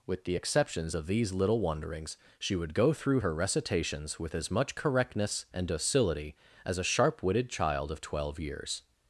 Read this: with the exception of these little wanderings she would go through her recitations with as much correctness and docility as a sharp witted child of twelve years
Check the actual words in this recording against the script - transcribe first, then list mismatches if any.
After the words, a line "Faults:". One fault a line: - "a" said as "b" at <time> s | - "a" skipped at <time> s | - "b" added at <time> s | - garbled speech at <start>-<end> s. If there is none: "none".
with the exceptions of these little wanderings she would go through her recitations with as much correctness and docility as a sharp witted child of twelve years
Faults:
- "exception" said as "exceptions" at 0.3 s